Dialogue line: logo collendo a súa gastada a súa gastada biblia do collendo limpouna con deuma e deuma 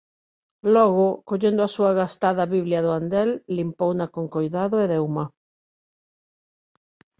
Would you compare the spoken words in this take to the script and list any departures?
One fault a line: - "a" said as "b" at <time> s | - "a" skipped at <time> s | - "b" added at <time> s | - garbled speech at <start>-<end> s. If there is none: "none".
- "a súa gastada" skipped at 2.5 s
- "collendo" said as "andel" at 3.0 s
- "deuma" said as "coidado" at 4.4 s